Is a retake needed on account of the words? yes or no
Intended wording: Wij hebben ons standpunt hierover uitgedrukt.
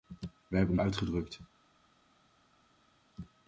yes